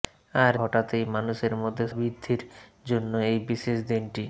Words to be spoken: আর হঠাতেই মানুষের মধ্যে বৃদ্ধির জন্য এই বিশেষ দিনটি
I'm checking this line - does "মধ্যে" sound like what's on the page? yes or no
yes